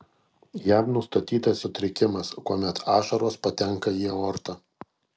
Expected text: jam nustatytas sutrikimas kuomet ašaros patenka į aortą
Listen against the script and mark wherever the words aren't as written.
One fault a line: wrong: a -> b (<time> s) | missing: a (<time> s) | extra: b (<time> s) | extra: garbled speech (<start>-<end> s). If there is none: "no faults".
no faults